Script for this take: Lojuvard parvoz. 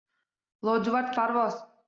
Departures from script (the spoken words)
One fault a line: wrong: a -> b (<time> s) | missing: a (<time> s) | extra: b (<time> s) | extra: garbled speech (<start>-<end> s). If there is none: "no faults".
no faults